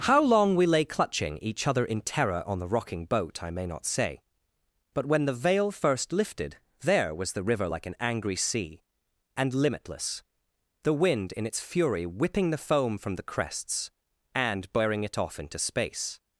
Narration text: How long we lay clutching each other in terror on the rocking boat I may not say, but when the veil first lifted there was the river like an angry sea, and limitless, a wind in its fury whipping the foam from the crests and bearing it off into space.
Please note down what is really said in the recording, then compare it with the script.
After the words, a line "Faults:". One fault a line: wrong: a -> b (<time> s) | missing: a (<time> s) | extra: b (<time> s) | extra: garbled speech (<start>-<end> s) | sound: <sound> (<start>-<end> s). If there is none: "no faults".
How long we lay clutching each other in terror on the rocking boat I may not say, but when the veil first lifted there was the river like an angry sea, and limitless, the wind in its fury whipping the foam from the crests and bearing it off into space.
Faults:
wrong: a -> the (10.8 s)